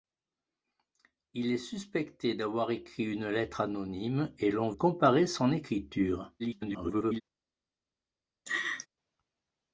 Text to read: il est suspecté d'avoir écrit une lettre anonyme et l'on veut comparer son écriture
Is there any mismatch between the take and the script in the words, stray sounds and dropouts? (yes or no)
yes